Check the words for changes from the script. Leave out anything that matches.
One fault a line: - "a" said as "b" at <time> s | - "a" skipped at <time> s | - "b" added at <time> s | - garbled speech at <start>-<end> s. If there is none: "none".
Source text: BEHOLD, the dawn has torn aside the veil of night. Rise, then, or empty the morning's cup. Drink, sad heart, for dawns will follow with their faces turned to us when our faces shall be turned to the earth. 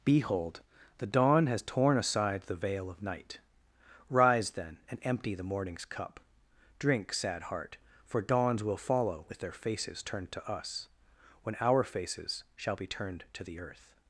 - "or" said as "and" at 4.9 s